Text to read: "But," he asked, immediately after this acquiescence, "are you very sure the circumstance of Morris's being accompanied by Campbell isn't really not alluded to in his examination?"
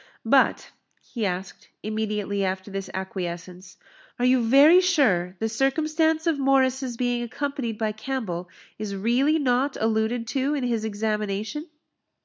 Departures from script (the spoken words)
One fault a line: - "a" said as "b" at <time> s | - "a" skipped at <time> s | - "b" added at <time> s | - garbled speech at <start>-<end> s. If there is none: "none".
- "isn't" said as "is" at 8.8 s